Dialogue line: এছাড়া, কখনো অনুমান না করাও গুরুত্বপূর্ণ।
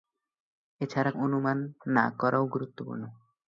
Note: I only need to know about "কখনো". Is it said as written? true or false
false